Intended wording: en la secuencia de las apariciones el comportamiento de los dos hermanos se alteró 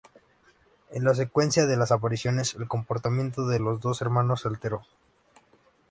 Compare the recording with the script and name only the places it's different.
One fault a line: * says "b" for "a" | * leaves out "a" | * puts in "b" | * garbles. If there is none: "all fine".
all fine